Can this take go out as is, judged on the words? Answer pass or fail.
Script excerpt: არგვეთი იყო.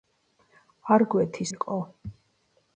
pass